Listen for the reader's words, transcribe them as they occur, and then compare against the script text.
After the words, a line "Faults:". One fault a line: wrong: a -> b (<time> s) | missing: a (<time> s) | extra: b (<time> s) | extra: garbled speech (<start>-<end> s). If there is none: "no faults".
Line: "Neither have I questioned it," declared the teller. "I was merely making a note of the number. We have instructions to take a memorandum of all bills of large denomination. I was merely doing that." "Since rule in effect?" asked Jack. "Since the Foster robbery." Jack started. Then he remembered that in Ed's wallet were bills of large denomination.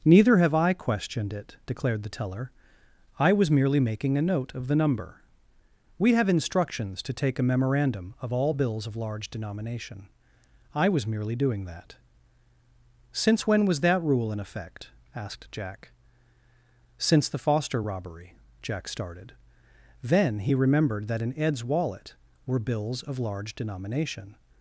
"Neither have I questioned it," declared the teller. "I was merely making a note of the number. We have instructions to take a memorandum of all bills of large denomination. I was merely doing that." "Since when was that rule in effect?" asked Jack. "Since the Foster robbery." Jack started. Then he remembered that in Ed's wallet were bills of large denomination.
Faults:
extra: when was that (13.5 s)